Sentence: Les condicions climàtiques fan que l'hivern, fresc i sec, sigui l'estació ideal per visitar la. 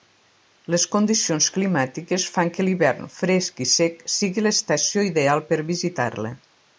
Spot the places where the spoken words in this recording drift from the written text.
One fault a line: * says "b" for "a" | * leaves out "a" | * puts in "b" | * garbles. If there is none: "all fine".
all fine